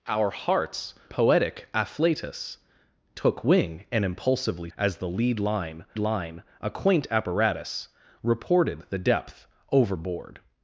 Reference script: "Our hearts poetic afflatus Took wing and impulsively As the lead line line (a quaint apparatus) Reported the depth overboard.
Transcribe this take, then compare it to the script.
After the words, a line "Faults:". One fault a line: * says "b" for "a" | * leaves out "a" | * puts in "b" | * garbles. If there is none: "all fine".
"Our hearts poetic afflatus Took wing and impulsively As the lead line line (a quaint apparatus) Reported the depth overboard.
Faults:
all fine